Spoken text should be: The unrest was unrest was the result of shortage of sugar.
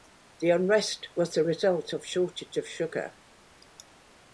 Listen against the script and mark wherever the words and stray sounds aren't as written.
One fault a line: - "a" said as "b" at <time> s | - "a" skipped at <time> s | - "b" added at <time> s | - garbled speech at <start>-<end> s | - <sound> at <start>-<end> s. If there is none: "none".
- "unrest was" skipped at 1.3 s